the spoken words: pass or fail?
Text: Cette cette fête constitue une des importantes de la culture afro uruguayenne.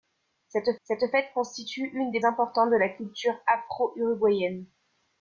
pass